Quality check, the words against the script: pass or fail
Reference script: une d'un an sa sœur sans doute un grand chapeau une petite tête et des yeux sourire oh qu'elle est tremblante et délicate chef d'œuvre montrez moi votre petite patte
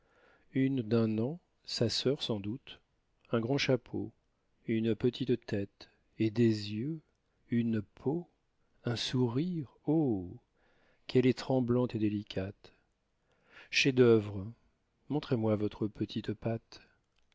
fail